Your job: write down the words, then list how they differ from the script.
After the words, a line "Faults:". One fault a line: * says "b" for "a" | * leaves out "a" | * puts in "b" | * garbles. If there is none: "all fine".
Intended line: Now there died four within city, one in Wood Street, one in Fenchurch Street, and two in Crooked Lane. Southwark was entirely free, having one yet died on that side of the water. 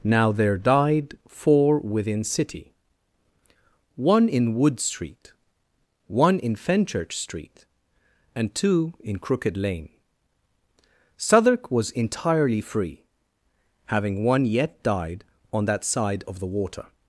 Now there died four within city, one in Wood Street, one in Fenchurch Street, and two in Crooked Lane. Southwark was entirely free, having one yet died on that side of the water.
Faults:
all fine